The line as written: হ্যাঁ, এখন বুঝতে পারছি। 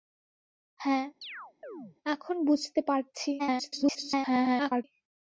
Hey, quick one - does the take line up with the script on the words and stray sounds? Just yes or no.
no